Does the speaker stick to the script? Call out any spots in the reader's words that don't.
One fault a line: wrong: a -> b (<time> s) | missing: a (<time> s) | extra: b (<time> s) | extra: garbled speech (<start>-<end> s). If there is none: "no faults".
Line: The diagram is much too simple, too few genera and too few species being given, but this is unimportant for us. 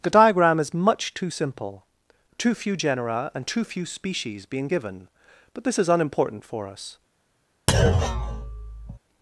no faults